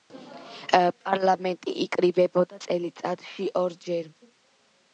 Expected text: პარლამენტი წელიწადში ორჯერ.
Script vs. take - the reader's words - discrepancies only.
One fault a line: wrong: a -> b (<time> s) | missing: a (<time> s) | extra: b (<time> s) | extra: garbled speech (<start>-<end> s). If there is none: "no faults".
extra: იკრიბებოდა (1.9 s)